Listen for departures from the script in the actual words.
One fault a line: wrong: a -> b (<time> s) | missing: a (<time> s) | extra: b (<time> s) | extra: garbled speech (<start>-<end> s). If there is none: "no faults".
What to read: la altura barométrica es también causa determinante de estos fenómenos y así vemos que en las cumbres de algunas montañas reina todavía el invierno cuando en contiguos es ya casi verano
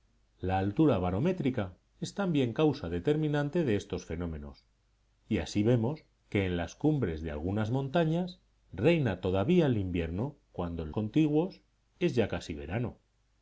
no faults